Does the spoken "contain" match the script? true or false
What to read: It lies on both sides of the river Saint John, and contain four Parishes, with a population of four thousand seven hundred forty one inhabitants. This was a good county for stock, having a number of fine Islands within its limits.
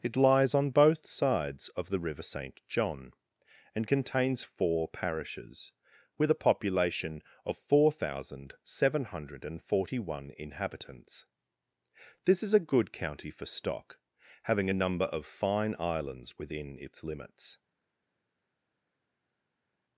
false